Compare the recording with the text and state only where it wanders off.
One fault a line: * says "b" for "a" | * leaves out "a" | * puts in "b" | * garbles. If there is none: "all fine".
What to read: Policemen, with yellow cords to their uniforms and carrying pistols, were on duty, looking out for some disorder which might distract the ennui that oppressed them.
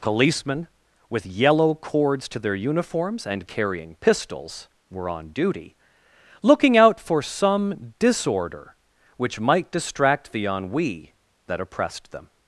all fine